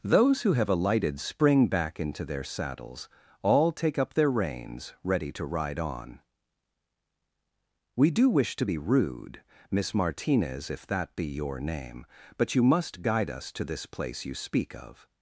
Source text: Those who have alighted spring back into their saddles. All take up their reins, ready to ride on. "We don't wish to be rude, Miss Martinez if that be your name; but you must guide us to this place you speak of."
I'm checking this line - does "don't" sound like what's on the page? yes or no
no